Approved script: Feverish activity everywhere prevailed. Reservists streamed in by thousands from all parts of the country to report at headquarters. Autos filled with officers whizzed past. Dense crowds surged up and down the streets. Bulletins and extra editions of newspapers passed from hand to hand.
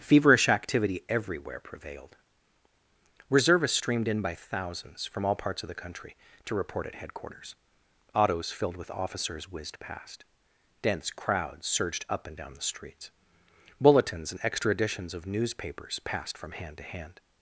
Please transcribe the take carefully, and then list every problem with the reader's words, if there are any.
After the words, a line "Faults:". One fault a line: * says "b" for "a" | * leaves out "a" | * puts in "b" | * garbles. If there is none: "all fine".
Feverish activity everywhere prevailed. Reservists streamed in by thousands from all parts of the country to report at headquarters. Autos filled with officers whizzed past. Dense crowds surged up and down the streets. Bulletins and extra editions of newspapers passed from hand to hand.
Faults:
all fine